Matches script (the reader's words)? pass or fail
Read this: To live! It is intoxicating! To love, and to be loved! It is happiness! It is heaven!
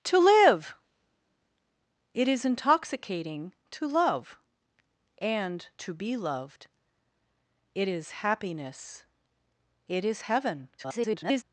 fail